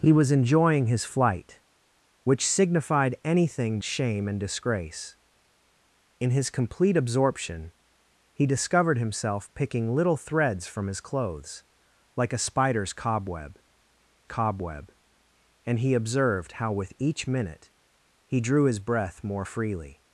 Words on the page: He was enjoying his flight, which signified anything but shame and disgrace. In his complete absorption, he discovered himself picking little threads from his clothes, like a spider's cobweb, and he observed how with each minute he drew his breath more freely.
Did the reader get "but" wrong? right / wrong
wrong